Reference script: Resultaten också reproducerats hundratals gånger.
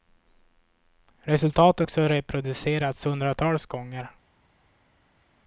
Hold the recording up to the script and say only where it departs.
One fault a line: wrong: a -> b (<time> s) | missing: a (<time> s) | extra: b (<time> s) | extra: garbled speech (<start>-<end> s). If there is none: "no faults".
no faults